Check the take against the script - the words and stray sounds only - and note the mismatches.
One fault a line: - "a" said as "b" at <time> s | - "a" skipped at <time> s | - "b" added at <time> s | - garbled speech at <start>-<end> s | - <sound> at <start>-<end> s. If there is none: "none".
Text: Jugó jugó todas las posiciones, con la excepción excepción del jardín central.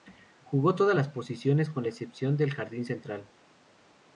- "jugó" skipped at 0.7 s
- "excepción" skipped at 2.4 s